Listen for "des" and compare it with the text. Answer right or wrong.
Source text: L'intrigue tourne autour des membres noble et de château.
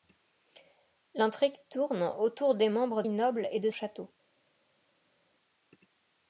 right